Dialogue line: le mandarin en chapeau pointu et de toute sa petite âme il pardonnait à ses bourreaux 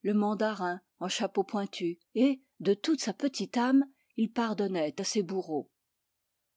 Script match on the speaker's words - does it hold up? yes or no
yes